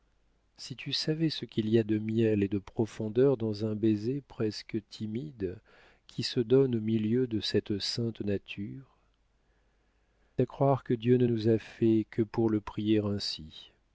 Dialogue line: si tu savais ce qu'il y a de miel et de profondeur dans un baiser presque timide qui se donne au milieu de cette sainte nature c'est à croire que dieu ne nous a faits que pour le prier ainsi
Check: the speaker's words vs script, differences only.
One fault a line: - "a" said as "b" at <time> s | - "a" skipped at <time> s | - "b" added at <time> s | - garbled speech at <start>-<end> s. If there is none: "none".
- "c'est" skipped at 9.0 s